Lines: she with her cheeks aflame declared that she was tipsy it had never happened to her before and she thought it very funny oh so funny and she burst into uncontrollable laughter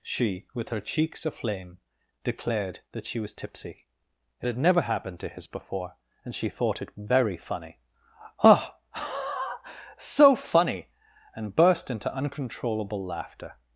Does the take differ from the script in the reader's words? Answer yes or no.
yes